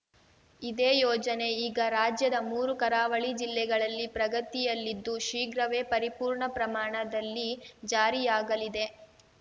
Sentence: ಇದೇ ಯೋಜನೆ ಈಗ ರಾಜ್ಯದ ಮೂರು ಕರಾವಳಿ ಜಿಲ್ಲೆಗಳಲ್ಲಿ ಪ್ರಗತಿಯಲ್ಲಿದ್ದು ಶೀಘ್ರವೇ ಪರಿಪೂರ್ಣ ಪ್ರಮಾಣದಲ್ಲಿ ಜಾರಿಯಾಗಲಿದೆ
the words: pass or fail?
pass